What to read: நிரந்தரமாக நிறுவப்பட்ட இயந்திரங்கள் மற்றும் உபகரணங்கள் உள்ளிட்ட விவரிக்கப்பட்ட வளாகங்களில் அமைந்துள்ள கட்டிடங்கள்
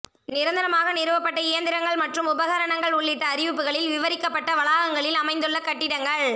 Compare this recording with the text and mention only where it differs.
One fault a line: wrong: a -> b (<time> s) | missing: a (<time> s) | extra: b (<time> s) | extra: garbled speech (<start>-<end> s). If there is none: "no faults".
extra: அறிவிப்புகளில் (3.3 s)